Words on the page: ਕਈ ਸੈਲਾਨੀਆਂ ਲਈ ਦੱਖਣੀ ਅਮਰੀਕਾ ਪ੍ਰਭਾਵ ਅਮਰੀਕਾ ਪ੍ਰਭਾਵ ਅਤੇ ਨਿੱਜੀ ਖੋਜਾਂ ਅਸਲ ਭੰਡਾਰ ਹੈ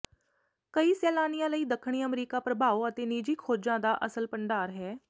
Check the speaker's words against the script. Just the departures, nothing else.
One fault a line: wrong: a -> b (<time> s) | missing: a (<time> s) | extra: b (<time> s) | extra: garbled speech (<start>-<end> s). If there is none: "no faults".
missing: ਅਮਰੀਕਾ ਪ੍ਰਭਾਵ (2.9 s)
extra: ਦਾ (3.8 s)